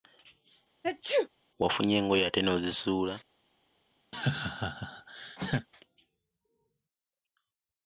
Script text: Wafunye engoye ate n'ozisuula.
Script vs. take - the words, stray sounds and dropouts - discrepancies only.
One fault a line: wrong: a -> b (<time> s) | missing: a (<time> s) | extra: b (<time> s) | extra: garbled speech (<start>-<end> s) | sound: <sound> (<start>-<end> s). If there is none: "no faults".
sound: sneeze (0.8-1.3 s)
sound: laugh (4.1-5.7 s)